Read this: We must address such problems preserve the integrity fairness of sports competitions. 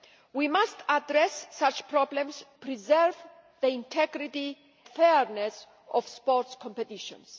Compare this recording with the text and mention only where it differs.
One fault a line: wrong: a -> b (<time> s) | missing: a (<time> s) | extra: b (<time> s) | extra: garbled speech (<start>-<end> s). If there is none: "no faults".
no faults